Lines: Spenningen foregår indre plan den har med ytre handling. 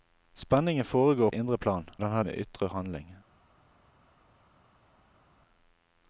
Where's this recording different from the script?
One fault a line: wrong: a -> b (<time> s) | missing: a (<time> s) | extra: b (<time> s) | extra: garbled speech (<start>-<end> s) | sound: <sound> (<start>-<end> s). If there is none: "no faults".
no faults